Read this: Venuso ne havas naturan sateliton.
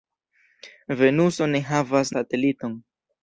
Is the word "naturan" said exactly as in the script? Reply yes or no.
no